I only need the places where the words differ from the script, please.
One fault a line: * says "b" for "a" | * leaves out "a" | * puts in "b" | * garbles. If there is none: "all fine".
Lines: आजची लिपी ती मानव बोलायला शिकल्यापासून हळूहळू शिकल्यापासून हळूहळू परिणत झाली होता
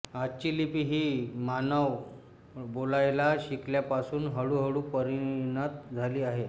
* says "ही" for "ती"
* leaves out "शिकल्यापासून हळूहळू"
* says "आहे" for "होता"